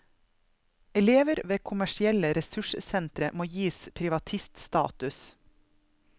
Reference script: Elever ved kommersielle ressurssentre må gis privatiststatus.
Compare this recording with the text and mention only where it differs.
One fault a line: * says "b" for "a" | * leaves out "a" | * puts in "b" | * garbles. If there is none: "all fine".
all fine